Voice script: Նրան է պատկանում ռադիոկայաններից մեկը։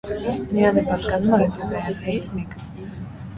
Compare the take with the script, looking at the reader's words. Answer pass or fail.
pass